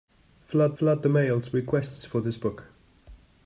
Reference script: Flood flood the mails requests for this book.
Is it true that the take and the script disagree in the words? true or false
false